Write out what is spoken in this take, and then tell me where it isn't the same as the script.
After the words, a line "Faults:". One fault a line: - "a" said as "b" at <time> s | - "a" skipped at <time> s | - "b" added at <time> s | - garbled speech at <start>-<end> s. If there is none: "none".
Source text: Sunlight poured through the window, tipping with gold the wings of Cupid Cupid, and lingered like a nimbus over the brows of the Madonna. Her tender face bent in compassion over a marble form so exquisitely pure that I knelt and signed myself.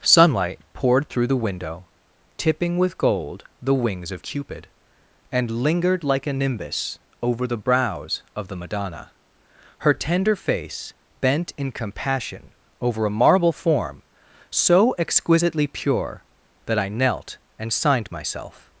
Sunlight poured through the window, tipping with gold the wings of Cupid, and lingered like a nimbus over the brows of the Madonna. Her tender face bent in compassion over a marble form so exquisitely pure that I knelt and signed myself.
Faults:
- "Cupid" skipped at 4.7 s